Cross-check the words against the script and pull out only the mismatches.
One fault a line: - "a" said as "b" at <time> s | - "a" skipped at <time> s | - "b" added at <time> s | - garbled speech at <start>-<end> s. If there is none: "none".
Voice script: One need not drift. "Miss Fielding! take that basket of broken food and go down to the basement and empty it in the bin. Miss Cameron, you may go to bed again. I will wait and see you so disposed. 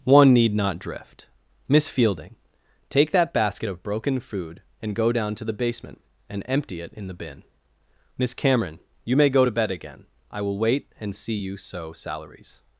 - "disposed" said as "salaries" at 11.9 s